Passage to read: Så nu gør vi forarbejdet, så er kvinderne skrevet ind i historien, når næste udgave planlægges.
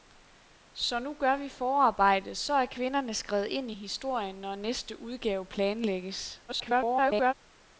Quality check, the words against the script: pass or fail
fail